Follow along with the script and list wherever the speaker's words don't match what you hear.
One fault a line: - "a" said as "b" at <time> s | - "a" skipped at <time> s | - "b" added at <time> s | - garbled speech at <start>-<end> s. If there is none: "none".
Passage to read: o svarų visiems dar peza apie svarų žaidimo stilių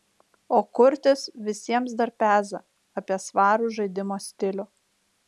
- "svarų" said as "kurtis" at 0.8 s